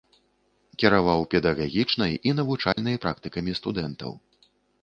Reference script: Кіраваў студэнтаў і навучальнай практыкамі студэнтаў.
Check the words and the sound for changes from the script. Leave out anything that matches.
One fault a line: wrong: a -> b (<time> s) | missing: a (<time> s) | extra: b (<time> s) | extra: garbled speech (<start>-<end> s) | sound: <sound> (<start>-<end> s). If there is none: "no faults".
wrong: студэнтаў -> педагагічнай (1.3 s)
sound: dropout (2.7-2.8 s)